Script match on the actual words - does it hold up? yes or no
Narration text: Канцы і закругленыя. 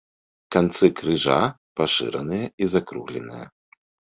no